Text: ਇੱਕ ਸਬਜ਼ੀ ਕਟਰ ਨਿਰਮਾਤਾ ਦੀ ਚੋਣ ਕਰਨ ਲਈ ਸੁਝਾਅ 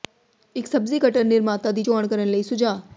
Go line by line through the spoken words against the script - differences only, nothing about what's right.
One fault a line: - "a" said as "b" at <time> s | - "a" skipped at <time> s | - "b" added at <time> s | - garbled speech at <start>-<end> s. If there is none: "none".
none